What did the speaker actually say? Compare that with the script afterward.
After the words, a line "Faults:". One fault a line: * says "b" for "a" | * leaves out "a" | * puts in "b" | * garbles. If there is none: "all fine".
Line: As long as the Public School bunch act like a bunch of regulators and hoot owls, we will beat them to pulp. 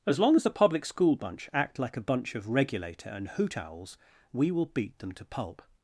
As long as the Public School bunch act like a bunch of regulator and hoot owls, we will beat them to pulp.
Faults:
* says "regulator" for "regulators"